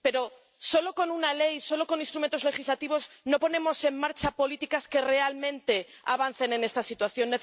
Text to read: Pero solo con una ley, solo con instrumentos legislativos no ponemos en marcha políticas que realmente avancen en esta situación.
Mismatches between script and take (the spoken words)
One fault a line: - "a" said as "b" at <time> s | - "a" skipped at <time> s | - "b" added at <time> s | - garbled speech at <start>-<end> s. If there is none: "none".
none